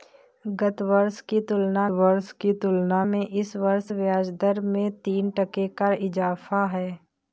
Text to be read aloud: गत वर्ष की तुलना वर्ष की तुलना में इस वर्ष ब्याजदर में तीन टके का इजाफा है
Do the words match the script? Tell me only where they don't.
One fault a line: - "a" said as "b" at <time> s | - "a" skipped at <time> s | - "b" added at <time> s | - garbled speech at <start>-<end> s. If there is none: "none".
none